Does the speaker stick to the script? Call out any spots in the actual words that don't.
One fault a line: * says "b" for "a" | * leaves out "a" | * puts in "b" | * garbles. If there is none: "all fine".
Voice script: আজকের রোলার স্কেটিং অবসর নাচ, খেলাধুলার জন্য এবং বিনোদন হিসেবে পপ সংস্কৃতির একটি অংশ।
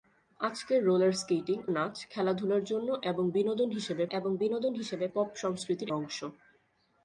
* leaves out "অবসর"
* puts in "এবং বিনোদন হিসেবে"
* leaves out "একটি"